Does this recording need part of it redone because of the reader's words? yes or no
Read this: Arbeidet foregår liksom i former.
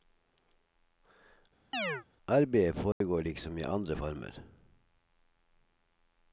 yes